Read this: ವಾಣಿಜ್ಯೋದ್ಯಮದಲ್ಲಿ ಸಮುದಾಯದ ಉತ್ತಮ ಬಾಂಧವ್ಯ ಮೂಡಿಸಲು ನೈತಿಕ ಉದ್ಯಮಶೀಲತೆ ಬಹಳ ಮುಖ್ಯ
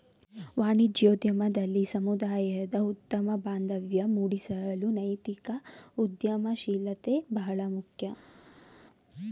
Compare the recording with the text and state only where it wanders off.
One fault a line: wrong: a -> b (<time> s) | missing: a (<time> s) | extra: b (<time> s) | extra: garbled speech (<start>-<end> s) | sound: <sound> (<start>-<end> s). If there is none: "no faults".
no faults